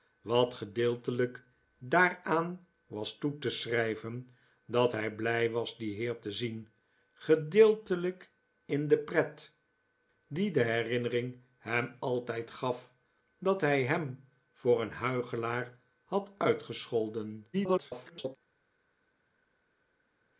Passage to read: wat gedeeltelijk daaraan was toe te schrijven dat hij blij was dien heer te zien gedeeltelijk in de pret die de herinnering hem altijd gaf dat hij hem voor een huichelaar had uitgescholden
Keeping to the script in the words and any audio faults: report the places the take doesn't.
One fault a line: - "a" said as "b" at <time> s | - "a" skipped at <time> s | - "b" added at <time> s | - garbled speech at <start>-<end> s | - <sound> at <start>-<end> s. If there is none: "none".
- garbled speech at 17.5-18.4 s